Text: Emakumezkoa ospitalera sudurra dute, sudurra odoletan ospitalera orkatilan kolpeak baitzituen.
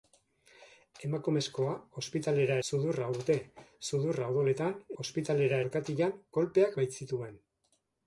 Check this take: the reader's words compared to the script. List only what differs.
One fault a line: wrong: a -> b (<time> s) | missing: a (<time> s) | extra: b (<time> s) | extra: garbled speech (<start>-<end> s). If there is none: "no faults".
no faults